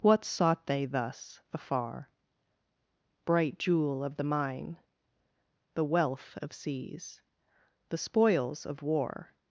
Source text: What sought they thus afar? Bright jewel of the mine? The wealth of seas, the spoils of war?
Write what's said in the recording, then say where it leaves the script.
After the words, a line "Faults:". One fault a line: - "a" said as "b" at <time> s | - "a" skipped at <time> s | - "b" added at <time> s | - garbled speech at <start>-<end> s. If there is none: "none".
What sought they thus afar? Bright jewel of the mine? The wealth of seas, the spoils of war?
Faults:
none